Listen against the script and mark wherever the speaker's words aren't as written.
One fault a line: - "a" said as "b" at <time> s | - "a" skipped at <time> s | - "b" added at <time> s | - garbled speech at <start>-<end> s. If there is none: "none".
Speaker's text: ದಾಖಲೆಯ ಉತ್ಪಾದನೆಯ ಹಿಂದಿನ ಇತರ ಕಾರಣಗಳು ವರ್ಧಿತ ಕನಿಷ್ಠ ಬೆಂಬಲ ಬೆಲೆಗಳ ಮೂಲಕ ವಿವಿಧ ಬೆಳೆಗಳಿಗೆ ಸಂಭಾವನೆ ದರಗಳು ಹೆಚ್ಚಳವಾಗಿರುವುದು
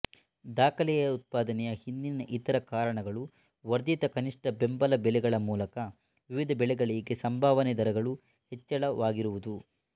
none